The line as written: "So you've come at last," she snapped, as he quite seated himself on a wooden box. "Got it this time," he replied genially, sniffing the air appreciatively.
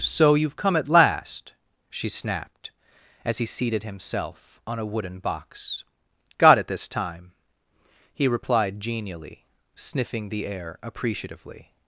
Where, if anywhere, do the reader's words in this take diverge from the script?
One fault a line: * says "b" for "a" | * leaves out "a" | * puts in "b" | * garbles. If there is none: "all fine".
* leaves out "quite"